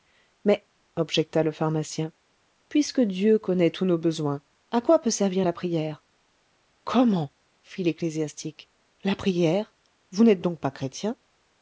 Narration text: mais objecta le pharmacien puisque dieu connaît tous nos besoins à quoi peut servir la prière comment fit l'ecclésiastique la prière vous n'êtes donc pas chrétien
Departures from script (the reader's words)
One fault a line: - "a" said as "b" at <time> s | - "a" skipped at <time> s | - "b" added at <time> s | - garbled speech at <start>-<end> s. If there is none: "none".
none